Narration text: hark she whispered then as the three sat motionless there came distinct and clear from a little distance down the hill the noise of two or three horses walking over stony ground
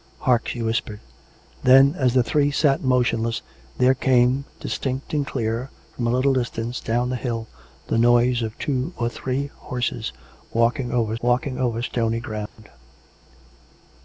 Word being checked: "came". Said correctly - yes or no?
yes